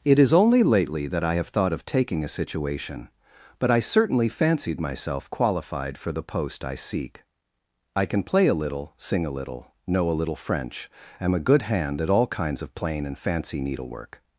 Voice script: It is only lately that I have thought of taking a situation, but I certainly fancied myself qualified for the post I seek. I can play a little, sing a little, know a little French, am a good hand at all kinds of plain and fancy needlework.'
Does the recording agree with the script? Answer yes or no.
yes